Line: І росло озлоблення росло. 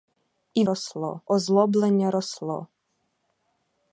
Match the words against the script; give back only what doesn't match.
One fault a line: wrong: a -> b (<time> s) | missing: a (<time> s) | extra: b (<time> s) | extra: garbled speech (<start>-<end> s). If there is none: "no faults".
no faults